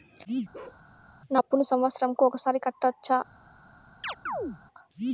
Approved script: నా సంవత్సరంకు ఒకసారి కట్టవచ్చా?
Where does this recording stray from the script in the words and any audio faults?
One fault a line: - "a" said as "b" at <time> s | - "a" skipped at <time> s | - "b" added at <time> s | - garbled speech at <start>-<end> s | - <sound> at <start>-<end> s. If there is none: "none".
- bark at 0.5-0.8 s
- "అప్పును" added at 1.3 s
- chirp at 4.0-4.6 s